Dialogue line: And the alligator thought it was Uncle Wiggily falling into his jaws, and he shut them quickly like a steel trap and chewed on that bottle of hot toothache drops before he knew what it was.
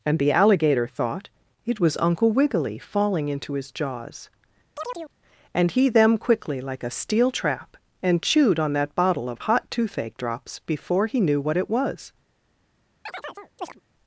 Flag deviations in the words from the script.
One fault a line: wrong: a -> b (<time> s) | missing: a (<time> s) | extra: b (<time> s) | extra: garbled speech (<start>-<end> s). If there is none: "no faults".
missing: shut (5.9 s)